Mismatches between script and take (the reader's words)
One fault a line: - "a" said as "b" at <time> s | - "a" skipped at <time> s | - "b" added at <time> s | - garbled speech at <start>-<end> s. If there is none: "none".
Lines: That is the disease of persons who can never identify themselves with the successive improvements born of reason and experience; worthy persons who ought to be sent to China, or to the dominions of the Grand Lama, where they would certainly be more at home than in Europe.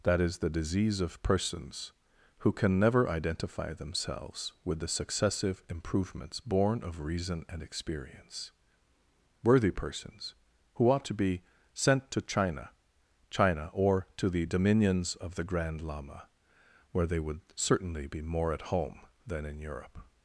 - "China" added at 13.3 s